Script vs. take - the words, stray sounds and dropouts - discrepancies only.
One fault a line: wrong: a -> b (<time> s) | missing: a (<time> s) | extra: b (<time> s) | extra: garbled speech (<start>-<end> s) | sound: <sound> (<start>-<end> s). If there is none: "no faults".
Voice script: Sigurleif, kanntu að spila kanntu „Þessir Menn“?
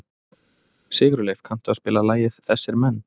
wrong: kanntu -> lagið (2.1 s)